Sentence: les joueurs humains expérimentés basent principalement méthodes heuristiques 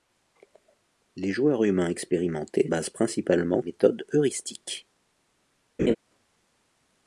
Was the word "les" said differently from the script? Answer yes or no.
no